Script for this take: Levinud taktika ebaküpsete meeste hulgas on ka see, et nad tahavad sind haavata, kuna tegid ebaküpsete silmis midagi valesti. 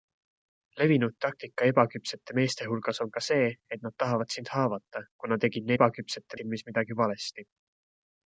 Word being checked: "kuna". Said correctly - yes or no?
yes